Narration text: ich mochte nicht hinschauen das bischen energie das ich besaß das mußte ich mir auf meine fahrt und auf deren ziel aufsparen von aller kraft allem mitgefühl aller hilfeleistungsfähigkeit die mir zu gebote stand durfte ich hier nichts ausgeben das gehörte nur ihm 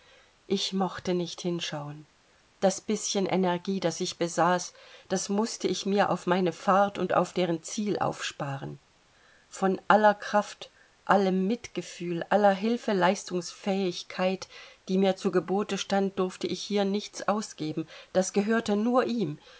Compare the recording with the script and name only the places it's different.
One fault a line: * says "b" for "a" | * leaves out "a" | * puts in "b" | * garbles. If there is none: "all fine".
all fine